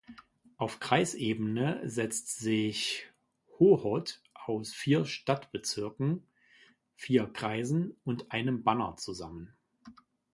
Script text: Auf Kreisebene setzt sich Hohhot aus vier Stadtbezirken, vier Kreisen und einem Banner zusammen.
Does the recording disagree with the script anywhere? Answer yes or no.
no